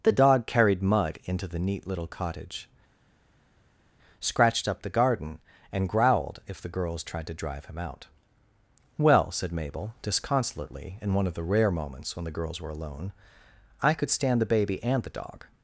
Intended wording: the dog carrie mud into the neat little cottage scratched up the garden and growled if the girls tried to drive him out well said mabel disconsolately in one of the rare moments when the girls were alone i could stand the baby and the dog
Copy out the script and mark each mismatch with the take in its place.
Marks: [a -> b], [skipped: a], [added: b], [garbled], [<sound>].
the dog [carrie -> carried] mud into the neat little cottage scratched up the garden and growled if the girls tried to drive him out well said mabel disconsolately in one of the rare moments when the girls were alone i could stand the baby and the dog